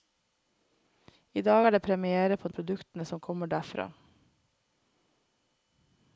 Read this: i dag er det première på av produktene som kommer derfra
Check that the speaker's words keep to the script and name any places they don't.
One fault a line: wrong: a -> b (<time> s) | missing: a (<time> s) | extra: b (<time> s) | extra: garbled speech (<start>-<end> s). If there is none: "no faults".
no faults